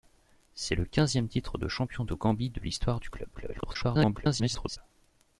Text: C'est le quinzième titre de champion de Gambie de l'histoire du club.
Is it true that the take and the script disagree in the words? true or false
true